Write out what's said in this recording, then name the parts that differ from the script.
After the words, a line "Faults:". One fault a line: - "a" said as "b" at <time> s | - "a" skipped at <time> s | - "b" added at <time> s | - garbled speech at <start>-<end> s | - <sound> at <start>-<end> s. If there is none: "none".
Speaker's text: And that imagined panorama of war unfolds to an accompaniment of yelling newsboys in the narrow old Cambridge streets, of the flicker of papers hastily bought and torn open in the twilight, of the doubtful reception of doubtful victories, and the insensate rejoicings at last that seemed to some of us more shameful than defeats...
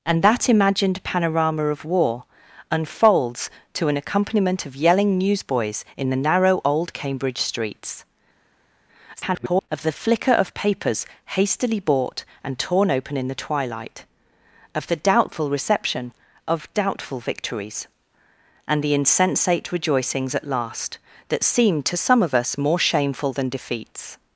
And that imagined panorama of war unfolds to an accompaniment of yelling newsboys in the narrow old Cambridge streets, [garbled] of the flicker of papers hastily bought and torn open in the twilight, of the doubtful reception of doubtful victories, and the insensate rejoicings at last that seemed to some of us more shameful than defeats...
Faults:
- garbled speech at 9.2-9.7 s